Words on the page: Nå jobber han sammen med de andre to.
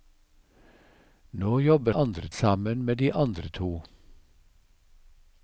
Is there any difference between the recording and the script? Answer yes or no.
yes